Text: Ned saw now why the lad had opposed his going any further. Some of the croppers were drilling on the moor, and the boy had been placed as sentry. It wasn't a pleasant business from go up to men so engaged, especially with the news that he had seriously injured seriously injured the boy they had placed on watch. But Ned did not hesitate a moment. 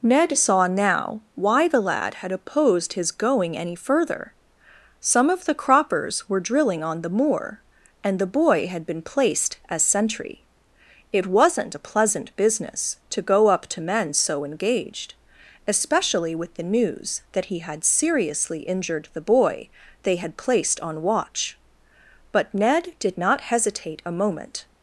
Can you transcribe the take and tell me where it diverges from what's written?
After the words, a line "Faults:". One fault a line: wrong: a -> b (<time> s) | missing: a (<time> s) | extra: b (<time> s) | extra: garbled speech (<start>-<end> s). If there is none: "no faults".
Ned saw now why the lad had opposed his going any further. Some of the croppers were drilling on the moor, and the boy had been placed as sentry. It wasn't a pleasant business to go up to men so engaged, especially with the news that he had seriously injured the boy they had placed on watch. But Ned did not hesitate a moment.
Faults:
wrong: from -> to (13.1 s)
missing: seriously injured (19.1 s)